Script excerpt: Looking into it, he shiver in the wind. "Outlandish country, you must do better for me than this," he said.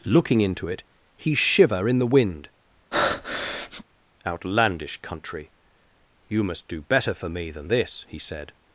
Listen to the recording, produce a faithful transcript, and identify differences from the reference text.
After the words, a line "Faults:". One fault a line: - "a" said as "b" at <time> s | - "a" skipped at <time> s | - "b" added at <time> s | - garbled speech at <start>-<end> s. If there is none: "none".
Looking into it, he shiver in the wind. "Outlandish country, you must do better for me than this," he said.
Faults:
none